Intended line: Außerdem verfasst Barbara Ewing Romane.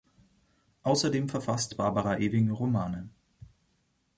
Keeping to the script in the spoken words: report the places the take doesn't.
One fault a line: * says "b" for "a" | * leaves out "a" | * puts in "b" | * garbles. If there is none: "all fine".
all fine